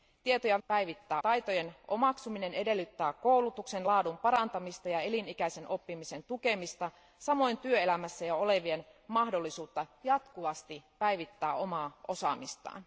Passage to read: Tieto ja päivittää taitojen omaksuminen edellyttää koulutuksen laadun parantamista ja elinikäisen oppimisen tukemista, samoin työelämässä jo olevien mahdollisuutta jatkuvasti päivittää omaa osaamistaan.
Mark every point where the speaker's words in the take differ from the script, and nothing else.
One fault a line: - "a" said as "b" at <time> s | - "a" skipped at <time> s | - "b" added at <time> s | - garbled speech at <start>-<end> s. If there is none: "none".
none